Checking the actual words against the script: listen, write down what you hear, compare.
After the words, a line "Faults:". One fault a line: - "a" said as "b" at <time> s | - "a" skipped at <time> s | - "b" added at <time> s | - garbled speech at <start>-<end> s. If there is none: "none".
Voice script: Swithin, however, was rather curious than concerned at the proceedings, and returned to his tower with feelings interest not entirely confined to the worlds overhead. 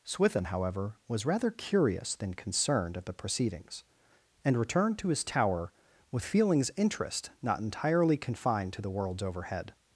Swithin, however, was rather curious than concerned at the proceedings, and returned to his tower with feelings interest not entirely confined to the worlds overhead.
Faults:
none